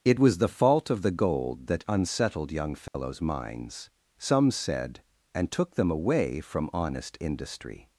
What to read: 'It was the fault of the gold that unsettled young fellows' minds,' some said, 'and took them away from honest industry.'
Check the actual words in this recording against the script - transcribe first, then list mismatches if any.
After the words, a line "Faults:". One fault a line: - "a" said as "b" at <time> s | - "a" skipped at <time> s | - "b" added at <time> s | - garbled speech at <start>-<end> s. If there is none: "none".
'It was the fault of the gold that unsettled young fellows' minds,' some said, 'and took them away from honest industry.'
Faults:
none